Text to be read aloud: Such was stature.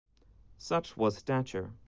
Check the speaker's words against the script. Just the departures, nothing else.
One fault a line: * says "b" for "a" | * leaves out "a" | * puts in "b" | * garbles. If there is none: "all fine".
all fine